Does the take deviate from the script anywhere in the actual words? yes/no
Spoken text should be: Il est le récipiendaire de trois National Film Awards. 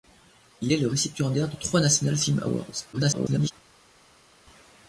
yes